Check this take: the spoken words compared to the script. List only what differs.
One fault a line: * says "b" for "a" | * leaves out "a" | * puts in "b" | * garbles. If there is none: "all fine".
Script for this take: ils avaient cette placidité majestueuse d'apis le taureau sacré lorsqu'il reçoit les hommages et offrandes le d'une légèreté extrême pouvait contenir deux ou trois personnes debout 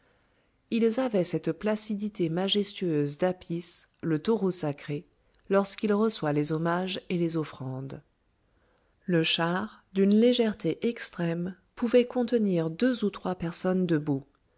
* puts in "les"
* puts in "char"